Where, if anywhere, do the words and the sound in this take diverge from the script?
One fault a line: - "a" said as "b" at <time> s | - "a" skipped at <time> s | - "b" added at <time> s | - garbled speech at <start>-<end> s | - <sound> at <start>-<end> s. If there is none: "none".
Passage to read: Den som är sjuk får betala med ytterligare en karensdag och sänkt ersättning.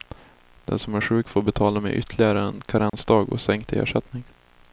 - dropout at 2.9-2.9 s